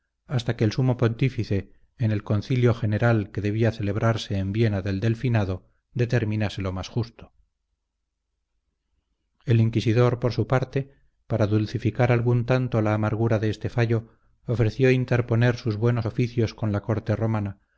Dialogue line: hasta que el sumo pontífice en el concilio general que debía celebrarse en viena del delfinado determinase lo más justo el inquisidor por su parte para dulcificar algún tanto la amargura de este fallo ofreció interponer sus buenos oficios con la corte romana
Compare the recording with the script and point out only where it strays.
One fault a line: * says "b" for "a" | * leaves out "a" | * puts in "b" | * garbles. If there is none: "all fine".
all fine